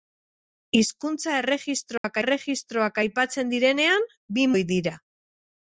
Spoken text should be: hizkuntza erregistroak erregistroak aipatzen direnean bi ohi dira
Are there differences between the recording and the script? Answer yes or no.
no